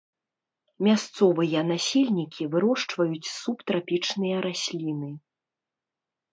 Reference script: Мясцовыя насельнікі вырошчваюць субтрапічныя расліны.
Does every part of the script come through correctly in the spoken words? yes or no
yes